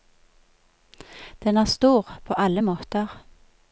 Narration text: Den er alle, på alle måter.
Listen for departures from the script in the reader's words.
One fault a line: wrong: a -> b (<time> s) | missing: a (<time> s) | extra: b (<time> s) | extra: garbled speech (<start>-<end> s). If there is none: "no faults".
wrong: alle -> stor (1.6 s)